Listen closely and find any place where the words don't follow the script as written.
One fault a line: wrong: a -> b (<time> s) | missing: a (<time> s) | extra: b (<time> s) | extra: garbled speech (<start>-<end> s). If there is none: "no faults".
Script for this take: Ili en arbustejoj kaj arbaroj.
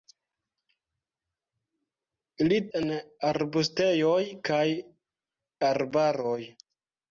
no faults